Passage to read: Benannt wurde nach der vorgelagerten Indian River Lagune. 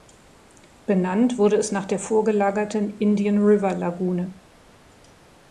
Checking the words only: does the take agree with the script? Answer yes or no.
no